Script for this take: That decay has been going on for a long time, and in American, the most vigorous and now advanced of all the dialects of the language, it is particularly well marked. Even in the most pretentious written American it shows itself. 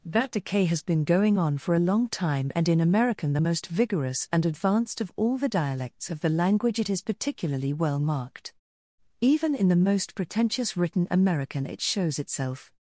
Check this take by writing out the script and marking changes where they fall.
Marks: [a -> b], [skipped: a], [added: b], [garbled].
That decay has been going on for a long time, and in American, the most vigorous and [skipped: now] advanced of all the dialects of the language, it is particularly well marked. Even in the most pretentious written American it shows itself.